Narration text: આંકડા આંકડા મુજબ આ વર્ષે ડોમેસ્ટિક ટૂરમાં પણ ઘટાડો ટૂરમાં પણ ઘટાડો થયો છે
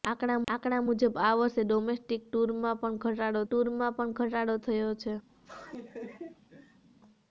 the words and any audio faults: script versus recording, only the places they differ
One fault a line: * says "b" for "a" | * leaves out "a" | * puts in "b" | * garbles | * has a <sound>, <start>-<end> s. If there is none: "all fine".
* has a laugh, 5.3-6.8 s